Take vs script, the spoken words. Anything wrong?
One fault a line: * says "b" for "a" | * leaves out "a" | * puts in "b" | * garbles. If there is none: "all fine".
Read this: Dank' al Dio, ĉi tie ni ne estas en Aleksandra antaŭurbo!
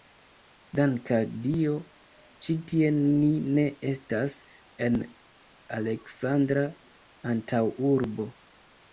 all fine